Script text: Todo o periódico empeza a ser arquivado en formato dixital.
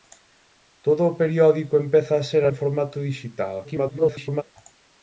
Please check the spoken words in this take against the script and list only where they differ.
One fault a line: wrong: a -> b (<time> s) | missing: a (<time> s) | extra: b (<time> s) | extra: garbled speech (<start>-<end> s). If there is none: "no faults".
missing: arquivado (2.4 s)
extra: garbled speech (3.6-4.4 s)